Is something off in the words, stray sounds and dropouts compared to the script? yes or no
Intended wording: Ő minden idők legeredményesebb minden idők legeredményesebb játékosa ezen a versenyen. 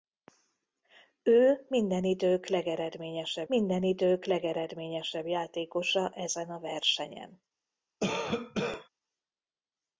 yes